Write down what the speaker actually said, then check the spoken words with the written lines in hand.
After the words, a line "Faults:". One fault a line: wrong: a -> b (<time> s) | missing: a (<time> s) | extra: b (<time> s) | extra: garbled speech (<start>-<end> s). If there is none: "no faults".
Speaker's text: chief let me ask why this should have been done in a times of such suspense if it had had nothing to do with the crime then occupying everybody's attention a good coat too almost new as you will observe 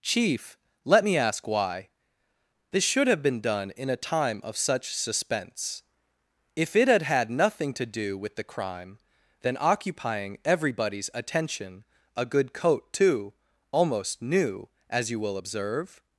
chief let me ask why this should have been done in a time of such suspense if it had had nothing to do with the crime then occupying everybody's attention a good coat too almost new as you will observe
Faults:
wrong: times -> time (4.0 s)